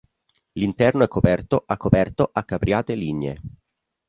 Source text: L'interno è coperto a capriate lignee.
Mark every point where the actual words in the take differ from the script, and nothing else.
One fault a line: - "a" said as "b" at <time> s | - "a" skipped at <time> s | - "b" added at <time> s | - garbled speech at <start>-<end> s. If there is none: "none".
- "coperto a" added at 1.8 s